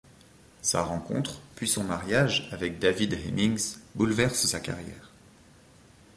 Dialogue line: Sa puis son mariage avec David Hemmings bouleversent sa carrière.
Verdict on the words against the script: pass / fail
fail